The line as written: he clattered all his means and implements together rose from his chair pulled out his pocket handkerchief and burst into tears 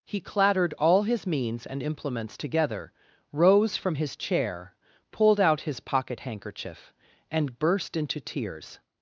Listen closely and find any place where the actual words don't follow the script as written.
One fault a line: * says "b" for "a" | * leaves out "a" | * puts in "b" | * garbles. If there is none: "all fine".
all fine